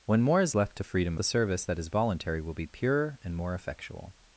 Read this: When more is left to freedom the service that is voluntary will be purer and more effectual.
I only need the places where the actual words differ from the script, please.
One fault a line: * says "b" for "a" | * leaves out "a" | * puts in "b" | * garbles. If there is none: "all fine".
all fine